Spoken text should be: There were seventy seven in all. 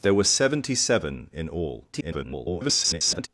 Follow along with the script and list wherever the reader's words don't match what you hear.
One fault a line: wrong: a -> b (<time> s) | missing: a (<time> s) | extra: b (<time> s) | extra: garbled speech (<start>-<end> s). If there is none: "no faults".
extra: garbled speech (1.9-3.3 s)